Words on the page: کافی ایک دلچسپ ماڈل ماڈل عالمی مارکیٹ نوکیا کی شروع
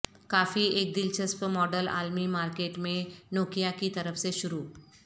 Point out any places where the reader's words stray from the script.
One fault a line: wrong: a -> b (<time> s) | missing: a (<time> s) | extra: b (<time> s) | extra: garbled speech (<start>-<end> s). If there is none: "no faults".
missing: ماڈل (1.9 s)
extra: میں (2.8 s)
extra: طرف سے (3.9 s)